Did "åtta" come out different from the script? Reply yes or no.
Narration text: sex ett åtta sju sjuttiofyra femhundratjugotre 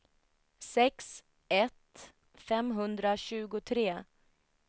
yes